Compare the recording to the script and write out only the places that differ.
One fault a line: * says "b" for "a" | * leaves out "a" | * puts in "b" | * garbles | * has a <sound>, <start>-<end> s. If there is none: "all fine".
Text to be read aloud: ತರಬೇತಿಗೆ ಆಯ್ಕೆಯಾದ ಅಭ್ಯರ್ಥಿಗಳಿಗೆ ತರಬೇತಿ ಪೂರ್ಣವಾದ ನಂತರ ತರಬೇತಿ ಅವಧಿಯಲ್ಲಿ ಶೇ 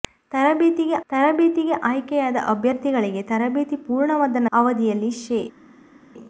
* puts in "ತರಬೇತಿಗೆ"
* leaves out "ನಂತರ ತರಬೇತಿ"